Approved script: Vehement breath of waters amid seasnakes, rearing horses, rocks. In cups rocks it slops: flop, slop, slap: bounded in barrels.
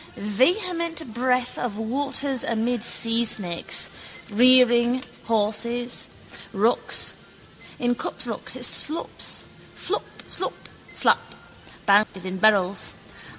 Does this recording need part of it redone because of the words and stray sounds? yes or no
yes